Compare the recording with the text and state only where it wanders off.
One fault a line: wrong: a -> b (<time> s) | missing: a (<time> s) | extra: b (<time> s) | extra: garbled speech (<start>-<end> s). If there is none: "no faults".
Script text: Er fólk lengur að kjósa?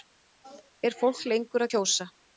no faults